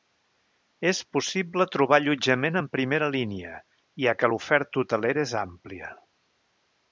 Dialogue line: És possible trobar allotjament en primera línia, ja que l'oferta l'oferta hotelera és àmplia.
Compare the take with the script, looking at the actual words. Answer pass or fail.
fail